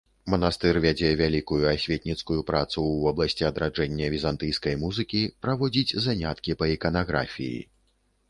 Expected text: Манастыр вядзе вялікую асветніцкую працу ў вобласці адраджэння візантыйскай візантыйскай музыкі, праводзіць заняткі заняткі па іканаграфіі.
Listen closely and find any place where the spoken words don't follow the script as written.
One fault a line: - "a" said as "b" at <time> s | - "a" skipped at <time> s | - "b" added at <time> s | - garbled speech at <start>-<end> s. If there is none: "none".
- "візантыйскай" skipped at 4.8 s
- "заняткі" skipped at 6.6 s